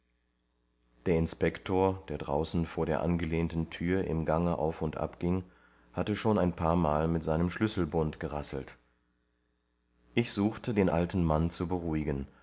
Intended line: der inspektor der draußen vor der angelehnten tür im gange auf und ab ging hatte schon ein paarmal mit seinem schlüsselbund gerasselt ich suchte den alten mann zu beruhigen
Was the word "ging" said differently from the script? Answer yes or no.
no